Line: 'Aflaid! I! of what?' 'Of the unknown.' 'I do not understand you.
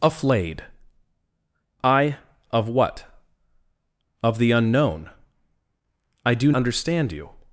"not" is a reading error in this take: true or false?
true